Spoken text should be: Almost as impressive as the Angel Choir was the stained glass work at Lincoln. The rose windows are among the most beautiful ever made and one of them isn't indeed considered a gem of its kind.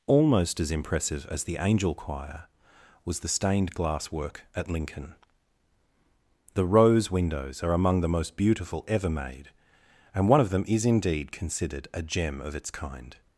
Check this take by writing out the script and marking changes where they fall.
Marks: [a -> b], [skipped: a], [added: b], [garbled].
Almost as impressive as the Angel Choir was the stained glass work at Lincoln. The rose windows are among the most beautiful ever made and one of them [isn't -> is] indeed considered a gem of its kind.